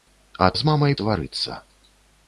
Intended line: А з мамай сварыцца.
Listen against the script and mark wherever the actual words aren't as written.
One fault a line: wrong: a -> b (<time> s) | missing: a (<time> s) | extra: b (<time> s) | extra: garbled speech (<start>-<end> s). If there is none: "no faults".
no faults